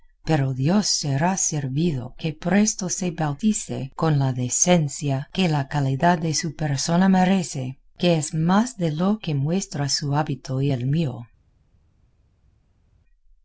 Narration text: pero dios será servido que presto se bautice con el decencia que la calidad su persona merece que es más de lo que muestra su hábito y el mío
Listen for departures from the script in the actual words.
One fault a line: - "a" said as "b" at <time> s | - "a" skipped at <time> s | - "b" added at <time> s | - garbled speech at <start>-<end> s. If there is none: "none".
- "el" said as "la" at 4.2 s
- "de" added at 6.2 s